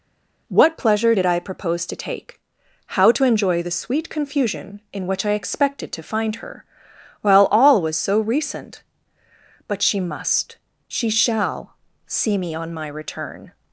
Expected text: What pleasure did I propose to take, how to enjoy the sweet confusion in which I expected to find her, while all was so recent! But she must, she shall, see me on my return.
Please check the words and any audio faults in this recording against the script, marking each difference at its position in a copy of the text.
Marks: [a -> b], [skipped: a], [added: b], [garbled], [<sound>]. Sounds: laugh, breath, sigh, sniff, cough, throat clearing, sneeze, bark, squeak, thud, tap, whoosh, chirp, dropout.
What pleasure did I propose to take, how to enjoy the sweet confusion in which I expected to find her, while all was so recent! But she must, she shall, see me on my return.